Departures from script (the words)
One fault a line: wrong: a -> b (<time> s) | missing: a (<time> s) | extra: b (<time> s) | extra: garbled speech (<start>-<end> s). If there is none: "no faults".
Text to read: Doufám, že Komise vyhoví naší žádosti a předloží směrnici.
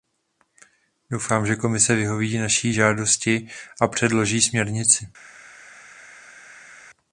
no faults